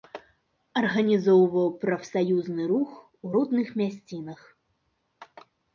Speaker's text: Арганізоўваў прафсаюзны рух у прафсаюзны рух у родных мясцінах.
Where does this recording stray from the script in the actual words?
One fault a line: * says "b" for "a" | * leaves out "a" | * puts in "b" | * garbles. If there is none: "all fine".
* leaves out "прафсаюзны рух у"